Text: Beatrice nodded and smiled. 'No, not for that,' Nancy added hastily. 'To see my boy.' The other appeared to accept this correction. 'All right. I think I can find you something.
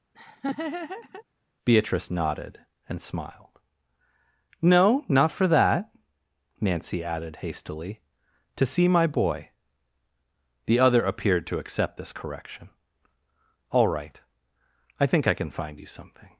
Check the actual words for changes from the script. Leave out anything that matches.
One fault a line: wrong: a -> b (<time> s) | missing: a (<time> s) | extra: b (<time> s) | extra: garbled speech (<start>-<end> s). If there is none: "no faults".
no faults